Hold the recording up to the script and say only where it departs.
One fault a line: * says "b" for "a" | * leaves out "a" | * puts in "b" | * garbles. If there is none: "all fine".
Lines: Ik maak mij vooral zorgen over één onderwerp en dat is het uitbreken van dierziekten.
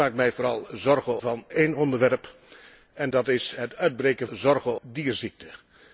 * says "van" for "over"
* says "zorgen" for "van"